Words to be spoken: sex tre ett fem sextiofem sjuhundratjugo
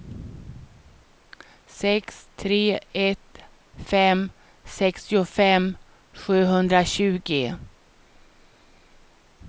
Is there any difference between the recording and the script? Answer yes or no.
no